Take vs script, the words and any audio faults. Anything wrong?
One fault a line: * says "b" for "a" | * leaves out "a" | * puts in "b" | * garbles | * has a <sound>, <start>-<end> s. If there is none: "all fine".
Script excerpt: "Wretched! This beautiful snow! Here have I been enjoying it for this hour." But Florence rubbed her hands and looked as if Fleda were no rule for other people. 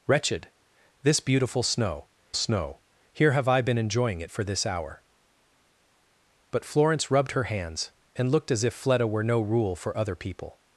* puts in "snow"